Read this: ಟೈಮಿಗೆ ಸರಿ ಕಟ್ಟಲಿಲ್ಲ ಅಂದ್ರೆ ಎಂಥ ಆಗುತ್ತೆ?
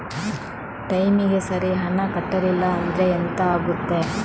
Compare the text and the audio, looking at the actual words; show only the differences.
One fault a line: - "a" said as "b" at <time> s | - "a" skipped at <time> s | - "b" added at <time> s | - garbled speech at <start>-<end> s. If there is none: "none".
- "ಹಣ" added at 1.8 s